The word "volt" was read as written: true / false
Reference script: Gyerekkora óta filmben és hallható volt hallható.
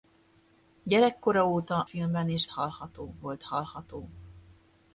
true